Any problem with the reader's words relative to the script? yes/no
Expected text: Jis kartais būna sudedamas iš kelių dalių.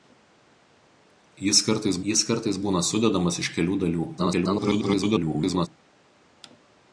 yes